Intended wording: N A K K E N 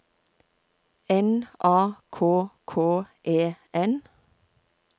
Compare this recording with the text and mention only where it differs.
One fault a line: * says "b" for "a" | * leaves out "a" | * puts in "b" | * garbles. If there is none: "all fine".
all fine